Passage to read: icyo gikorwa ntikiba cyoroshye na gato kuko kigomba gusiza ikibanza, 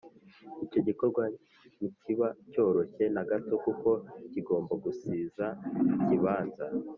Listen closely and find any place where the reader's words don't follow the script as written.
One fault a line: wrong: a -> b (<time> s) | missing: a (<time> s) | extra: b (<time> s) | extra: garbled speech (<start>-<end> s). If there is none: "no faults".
no faults